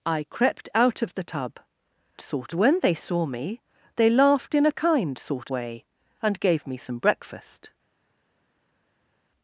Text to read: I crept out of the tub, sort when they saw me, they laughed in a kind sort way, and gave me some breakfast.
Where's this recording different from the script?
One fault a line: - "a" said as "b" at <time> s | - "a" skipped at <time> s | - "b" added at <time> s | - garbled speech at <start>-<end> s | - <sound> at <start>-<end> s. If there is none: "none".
none